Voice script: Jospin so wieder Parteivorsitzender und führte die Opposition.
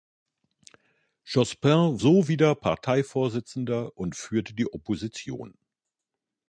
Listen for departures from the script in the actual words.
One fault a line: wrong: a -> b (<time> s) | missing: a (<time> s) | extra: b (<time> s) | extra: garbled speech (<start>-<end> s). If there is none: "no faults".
no faults